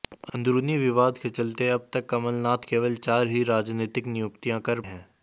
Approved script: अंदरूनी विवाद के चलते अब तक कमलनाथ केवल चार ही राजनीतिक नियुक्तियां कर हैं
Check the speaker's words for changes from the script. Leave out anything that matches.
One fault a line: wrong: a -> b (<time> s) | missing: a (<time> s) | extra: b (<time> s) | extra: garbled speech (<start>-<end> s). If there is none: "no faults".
no faults